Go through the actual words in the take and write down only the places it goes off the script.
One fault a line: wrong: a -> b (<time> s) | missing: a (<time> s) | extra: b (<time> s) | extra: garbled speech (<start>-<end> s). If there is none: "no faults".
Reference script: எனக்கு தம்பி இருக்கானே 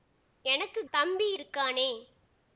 no faults